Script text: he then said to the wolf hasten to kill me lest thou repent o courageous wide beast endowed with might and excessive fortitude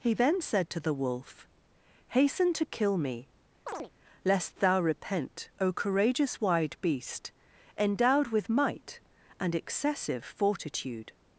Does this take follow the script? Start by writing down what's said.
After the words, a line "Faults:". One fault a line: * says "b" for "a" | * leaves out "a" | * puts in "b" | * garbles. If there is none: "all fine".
he then said to the wolf hasten to kill me lest thou repent o courageous wide beast endowed with might and excessive fortitude
Faults:
all fine